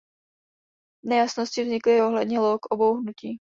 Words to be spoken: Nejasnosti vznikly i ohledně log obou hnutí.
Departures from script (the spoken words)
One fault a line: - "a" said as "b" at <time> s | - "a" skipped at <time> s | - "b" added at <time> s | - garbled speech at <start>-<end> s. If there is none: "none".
none